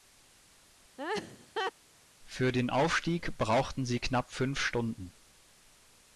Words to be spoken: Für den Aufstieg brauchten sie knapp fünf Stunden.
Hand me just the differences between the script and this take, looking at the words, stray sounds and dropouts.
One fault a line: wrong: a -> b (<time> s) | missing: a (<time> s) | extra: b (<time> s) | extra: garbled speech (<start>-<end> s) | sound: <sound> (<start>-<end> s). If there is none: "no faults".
sound: laugh (1.0-1.7 s)